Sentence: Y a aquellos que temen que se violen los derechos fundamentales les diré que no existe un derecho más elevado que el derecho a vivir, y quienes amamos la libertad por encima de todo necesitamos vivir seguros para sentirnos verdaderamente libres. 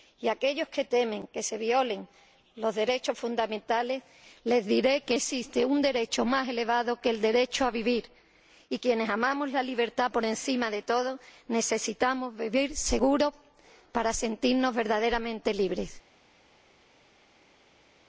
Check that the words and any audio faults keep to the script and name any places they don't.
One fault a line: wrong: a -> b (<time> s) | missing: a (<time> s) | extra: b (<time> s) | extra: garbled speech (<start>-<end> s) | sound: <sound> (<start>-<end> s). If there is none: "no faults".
missing: no (5.2 s)